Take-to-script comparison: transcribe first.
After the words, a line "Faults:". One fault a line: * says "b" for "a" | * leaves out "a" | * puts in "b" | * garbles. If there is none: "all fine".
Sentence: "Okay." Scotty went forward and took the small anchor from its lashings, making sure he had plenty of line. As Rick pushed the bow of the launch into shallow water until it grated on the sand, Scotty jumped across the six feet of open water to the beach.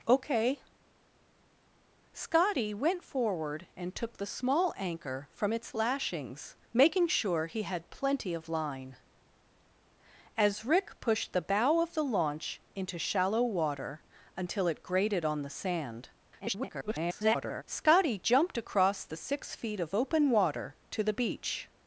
"Okay." Scotty went forward and took the small anchor from its lashings, making sure he had plenty of line. As Rick pushed the bow of the launch into shallow water until it grated on the sand, [garbled] Scotty jumped across the six feet of open water to the beach.
Faults:
* garbles